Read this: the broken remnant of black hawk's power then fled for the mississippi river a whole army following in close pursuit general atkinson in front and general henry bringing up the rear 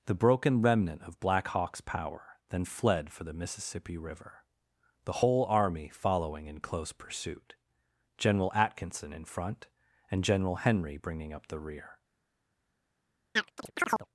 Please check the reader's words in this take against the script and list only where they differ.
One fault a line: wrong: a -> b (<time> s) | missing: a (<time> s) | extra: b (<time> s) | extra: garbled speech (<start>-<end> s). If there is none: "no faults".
wrong: a -> the (5.0 s)